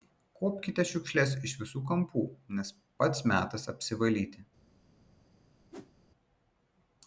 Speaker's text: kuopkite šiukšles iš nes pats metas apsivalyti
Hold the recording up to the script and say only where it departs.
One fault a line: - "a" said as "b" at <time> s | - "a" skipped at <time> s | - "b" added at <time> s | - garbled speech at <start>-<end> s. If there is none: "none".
- "visų kampų" added at 1.6 s